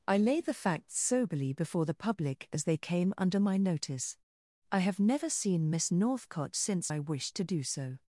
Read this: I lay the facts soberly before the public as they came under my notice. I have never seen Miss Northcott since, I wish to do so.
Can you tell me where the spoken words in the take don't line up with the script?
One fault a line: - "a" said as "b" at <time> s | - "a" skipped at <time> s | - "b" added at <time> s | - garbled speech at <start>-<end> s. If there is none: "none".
none